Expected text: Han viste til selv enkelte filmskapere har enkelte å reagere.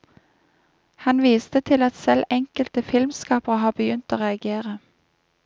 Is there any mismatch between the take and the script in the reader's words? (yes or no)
yes